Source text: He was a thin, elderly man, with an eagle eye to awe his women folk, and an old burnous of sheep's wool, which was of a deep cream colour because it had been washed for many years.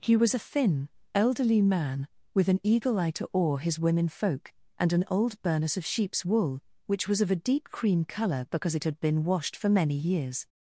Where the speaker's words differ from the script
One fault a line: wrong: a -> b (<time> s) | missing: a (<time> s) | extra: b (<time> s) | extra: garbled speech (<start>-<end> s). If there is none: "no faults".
no faults